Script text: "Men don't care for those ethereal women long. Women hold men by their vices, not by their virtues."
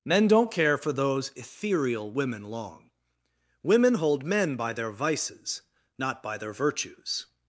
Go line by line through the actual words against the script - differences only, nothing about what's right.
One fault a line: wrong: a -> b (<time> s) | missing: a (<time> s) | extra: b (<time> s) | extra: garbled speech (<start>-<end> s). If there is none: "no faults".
no faults